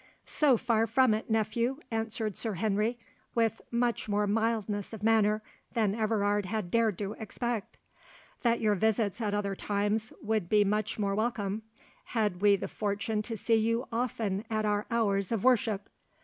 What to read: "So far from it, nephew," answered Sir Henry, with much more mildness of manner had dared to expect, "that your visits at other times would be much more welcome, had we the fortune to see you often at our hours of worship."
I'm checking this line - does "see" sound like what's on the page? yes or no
yes